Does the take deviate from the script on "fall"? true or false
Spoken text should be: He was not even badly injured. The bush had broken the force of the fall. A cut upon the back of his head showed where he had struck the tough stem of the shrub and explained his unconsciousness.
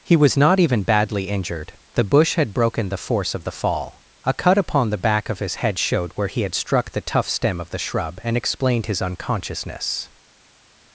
false